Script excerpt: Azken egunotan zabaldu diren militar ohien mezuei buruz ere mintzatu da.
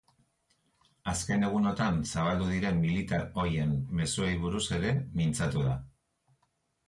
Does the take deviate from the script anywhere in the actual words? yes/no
no